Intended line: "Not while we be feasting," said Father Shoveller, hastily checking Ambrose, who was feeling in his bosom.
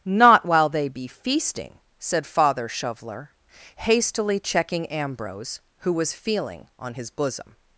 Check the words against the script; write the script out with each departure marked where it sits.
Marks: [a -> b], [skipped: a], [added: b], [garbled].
"Not while [we -> they] be feasting," said Father Shoveller, hastily checking Ambrose, who was feeling [in -> on] his bosom.